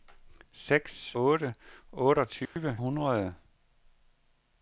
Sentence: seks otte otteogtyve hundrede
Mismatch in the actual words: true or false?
false